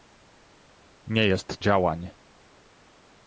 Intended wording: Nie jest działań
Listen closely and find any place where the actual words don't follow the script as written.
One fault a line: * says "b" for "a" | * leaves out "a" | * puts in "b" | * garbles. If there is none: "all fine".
all fine